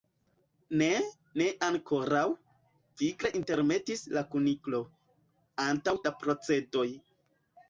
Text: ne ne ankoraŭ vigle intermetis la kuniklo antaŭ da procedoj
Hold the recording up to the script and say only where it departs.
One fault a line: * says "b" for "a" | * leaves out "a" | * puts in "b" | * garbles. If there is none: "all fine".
all fine